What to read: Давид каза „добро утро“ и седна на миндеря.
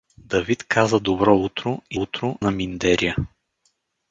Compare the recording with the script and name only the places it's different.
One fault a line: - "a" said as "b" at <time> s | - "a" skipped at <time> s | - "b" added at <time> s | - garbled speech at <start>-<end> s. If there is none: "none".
- "седна" said as "утро" at 1.9 s